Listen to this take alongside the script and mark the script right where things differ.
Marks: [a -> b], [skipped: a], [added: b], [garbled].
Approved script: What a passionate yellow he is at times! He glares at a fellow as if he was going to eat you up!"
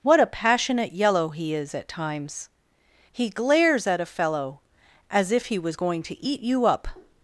What a passionate yellow he is at times! He glares at a fellow as if he was going to eat you up!"